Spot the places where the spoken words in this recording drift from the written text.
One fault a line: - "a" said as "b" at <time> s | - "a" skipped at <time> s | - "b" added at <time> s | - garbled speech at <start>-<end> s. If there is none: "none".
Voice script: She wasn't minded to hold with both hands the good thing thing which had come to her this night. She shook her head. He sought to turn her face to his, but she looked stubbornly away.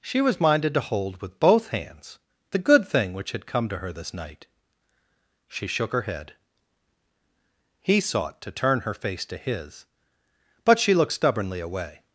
- "wasn't" said as "was" at 0.2 s
- "thing" skipped at 3.1 s